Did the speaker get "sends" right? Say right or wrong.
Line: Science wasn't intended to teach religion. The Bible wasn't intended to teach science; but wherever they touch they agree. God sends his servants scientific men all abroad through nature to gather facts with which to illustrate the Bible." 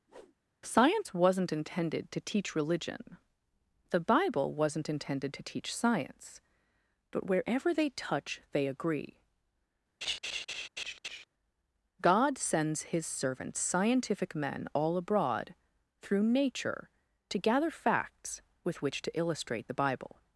right